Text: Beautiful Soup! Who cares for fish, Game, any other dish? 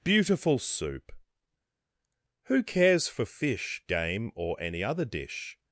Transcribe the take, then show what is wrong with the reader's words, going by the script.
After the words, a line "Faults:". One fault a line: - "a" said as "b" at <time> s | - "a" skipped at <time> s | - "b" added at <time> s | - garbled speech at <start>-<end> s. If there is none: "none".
Beautiful Soup! Who cares for fish, Game, or any other dish?
Faults:
- "or" added at 4.3 s